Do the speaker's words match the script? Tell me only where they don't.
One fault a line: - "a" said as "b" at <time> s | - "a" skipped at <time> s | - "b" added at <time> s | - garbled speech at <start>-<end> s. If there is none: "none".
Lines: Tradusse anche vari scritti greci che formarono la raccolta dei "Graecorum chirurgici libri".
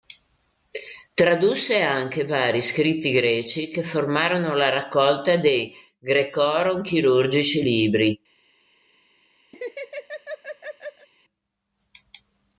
none